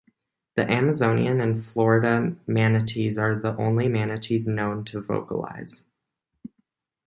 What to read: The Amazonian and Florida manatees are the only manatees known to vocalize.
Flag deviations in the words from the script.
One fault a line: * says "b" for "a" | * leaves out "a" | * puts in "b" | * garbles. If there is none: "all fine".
all fine